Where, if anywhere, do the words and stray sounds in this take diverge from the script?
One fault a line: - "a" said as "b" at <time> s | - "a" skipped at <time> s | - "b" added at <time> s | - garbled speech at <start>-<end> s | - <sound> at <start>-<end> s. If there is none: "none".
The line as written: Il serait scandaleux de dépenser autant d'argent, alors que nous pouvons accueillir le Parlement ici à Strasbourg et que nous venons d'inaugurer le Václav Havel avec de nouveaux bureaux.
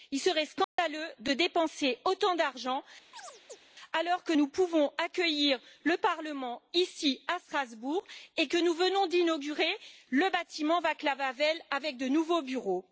- dropout at 0.6-0.8 s
- chirp at 3.1-3.6 s
- "bâtiment" added at 10.3 s